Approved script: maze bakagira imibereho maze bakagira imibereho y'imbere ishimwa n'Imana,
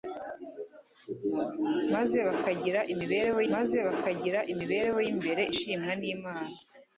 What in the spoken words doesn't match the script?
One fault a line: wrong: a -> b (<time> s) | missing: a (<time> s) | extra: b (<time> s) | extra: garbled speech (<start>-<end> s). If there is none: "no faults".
no faults